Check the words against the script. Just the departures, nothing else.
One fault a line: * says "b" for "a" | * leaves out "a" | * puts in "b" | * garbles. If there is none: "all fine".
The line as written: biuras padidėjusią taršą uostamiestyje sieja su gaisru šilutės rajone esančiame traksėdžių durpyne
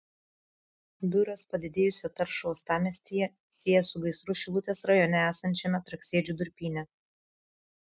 all fine